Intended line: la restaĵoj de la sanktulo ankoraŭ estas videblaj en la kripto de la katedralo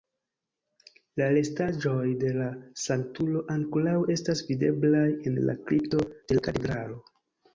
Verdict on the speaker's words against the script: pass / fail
pass